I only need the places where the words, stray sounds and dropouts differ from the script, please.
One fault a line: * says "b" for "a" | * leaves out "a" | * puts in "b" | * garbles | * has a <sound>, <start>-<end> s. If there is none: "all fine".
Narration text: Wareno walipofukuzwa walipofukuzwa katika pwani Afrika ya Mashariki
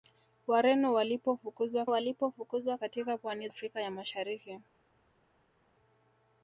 all fine